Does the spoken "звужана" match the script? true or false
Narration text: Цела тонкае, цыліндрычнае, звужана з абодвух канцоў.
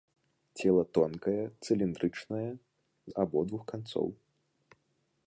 false